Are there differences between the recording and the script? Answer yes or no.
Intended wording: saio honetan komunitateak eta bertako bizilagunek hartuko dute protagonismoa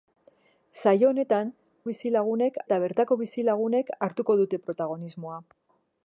yes